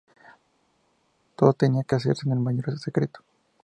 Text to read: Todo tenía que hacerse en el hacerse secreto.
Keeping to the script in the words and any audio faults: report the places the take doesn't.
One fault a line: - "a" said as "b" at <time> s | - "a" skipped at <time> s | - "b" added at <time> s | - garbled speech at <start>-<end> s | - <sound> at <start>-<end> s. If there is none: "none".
- "hacerse" said as "mayor" at 2.4 s